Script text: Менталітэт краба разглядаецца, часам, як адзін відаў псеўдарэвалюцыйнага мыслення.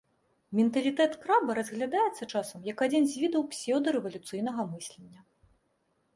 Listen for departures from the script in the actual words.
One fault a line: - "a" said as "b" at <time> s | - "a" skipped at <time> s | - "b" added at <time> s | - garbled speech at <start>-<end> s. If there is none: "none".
- "з" added at 3.1 s